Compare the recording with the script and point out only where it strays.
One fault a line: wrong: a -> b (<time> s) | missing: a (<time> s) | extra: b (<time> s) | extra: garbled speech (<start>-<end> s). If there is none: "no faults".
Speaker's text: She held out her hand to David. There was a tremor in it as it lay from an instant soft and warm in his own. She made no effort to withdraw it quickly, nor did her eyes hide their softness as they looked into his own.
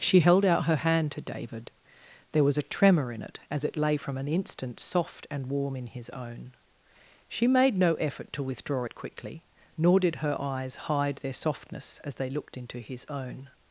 no faults